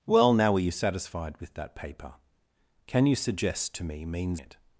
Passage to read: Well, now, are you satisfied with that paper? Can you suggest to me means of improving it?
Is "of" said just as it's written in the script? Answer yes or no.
no